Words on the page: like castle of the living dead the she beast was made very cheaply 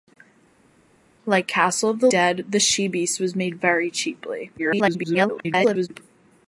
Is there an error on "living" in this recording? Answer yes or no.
yes